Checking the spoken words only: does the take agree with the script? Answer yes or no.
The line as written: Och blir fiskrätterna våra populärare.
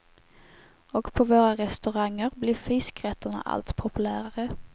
no